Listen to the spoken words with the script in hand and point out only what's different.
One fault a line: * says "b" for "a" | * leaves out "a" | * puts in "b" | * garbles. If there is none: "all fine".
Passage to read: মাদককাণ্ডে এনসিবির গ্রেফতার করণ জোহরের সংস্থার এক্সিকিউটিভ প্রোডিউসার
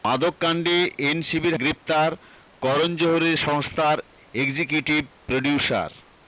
all fine